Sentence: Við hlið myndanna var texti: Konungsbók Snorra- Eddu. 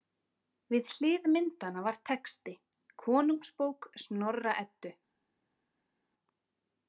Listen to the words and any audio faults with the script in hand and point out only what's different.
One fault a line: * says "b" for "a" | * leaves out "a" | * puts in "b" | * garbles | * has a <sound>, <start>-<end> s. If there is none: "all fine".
all fine